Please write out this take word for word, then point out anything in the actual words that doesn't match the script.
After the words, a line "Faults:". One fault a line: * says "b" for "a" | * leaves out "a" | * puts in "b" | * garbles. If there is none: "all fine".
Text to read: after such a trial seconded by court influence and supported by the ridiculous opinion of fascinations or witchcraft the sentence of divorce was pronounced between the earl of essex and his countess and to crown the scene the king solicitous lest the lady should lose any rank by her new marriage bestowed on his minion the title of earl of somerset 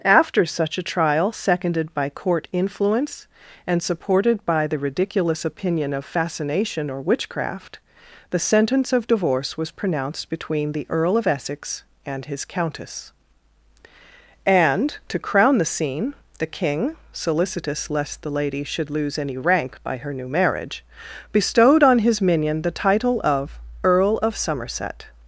after such a trial seconded by court influence and supported by the ridiculous opinion of fascination or witchcraft the sentence of divorce was pronounced between the earl of essex and his countess and to crown the scene the king solicitous lest the lady should lose any rank by her new marriage bestowed on his minion the title of earl of somerset
Faults:
* says "fascination" for "fascinations"